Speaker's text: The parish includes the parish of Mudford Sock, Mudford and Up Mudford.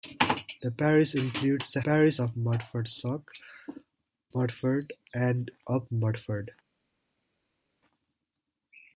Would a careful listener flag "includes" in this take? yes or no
no